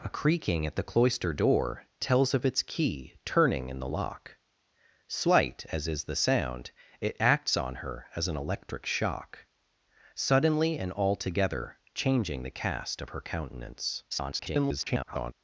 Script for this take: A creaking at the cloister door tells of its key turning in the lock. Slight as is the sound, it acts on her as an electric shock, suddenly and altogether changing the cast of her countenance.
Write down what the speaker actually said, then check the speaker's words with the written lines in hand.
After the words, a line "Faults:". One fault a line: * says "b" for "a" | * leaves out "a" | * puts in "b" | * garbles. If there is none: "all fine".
A creaking at the cloister door tells of its key turning in the lock. Slight as is the sound, it acts on her as an electric shock, suddenly and altogether changing the cast of her countenance. [garbled]
Faults:
* garbles